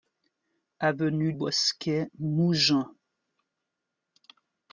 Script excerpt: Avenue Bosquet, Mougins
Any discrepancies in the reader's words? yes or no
no